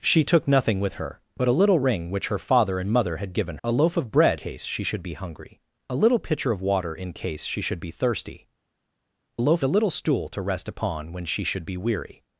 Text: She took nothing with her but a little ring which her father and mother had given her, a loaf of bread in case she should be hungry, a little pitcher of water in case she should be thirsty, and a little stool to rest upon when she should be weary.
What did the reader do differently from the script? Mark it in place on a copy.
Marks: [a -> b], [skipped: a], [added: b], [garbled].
She took nothing with her but a little ring which her father and mother had given [skipped: her,] a loaf of bread [skipped: in] case she should be hungry, a little pitcher of water in case she should be thirsty, [and -> loaf] a little stool to rest upon when she should be weary.